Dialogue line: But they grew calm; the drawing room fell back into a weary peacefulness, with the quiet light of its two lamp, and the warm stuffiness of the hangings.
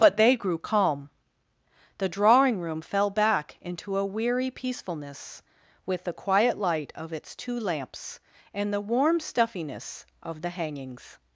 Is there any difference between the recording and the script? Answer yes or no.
yes